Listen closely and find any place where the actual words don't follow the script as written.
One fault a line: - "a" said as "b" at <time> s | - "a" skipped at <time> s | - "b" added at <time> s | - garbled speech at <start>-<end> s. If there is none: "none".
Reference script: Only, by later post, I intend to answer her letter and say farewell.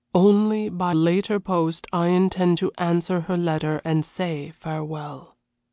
none